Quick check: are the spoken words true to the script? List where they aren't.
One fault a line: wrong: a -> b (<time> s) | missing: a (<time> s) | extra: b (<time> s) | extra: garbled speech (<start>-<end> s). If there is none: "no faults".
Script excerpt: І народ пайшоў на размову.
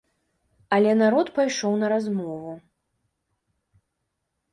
wrong: І -> Але (0.8 s)